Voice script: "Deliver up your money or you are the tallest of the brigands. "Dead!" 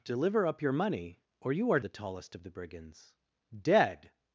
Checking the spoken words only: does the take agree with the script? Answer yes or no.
yes